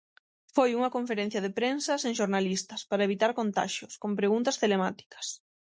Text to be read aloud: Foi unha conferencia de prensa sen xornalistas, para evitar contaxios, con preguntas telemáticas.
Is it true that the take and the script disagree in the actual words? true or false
false